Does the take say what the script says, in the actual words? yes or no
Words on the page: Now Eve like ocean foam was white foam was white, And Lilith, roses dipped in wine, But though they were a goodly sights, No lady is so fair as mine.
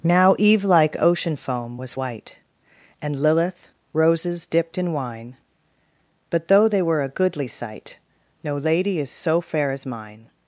no